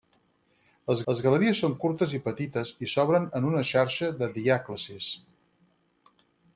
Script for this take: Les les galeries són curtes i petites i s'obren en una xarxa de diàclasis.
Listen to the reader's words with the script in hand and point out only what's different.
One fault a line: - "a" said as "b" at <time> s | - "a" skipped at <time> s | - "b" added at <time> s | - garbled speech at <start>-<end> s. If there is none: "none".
none